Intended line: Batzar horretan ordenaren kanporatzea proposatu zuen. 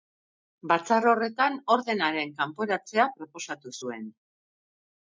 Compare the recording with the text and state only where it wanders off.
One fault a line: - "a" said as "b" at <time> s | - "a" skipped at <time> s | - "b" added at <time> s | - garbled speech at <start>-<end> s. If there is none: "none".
none